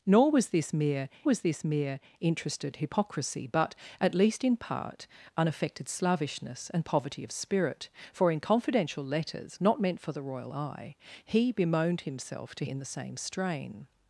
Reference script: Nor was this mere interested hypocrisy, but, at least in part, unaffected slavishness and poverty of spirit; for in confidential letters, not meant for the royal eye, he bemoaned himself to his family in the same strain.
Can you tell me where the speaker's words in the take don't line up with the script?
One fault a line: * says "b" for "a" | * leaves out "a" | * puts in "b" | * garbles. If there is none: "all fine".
* puts in "was this mere"
* leaves out "his family"